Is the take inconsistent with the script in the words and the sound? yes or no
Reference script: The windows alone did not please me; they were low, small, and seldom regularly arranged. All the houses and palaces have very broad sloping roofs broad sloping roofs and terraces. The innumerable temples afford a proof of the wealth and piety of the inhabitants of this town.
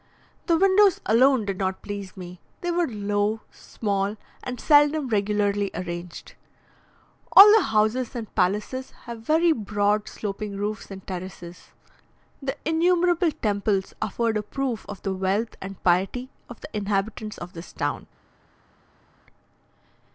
yes